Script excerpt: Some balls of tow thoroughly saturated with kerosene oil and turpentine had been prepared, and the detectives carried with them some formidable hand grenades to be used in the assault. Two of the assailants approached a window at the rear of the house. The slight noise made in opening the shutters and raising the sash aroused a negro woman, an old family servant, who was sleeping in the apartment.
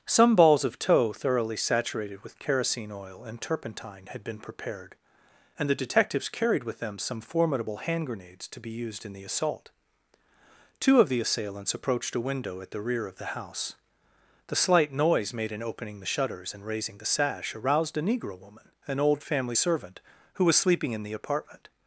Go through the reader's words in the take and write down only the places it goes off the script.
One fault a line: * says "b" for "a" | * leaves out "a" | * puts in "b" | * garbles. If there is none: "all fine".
all fine